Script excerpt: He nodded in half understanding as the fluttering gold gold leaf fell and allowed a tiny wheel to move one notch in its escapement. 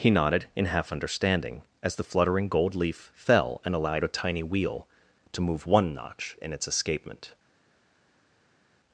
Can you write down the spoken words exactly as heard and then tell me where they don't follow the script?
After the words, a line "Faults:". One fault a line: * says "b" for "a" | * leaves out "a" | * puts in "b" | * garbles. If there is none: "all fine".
He nodded in half understanding as the fluttering gold leaf fell and allowed a tiny wheel to move one notch in its escapement.
Faults:
* leaves out "gold"